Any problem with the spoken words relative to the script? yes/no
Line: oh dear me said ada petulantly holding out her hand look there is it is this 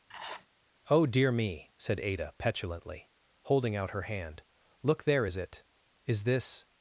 no